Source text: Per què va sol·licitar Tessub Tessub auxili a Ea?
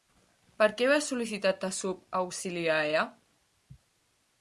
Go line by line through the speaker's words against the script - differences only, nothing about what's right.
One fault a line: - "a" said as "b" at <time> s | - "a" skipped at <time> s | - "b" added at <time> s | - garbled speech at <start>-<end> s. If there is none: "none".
- "Tessub" skipped at 2.0 s